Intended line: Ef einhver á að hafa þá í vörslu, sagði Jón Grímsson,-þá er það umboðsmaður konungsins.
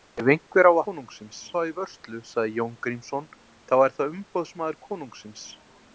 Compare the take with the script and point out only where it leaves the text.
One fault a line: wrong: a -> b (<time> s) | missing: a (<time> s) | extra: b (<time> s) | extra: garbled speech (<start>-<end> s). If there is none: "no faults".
wrong: hafa -> konungsins (0.9 s)